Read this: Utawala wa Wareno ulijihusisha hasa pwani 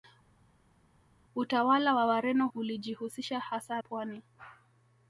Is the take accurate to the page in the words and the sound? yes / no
yes